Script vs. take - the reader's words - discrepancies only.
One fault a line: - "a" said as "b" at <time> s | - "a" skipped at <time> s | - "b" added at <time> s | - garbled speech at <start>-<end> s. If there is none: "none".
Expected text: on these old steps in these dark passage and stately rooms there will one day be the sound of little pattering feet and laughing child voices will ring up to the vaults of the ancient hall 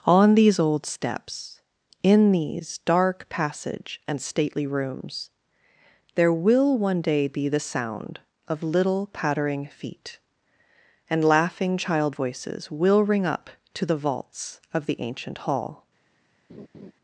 none